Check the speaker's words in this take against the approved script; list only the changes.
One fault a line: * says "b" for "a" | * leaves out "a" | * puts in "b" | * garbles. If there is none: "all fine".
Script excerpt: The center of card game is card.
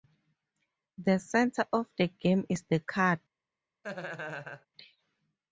* says "the" for "card"
* puts in "the"